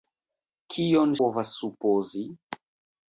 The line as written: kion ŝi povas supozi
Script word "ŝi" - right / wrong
wrong